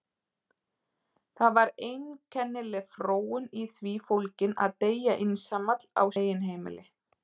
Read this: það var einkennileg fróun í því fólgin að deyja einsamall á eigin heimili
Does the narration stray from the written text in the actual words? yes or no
no